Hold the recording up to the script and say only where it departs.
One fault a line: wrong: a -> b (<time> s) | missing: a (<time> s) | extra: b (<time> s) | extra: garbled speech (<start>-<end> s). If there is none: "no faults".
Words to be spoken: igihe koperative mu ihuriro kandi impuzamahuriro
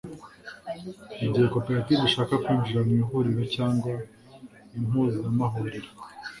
extra: ishaka kwinjira (2.1 s)
wrong: kandi -> cyangwa (3.5 s)